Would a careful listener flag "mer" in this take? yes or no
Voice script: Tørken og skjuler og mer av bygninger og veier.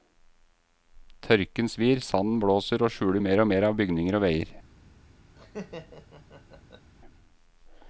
no